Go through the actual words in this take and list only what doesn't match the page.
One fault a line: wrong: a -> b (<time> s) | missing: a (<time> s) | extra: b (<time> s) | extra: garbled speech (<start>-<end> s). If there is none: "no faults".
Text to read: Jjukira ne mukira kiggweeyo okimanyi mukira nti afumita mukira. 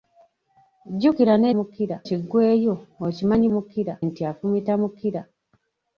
no faults